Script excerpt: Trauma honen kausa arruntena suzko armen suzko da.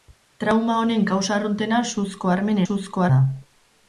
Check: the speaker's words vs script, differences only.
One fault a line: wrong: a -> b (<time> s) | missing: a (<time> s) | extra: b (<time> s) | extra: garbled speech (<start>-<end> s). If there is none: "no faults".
no faults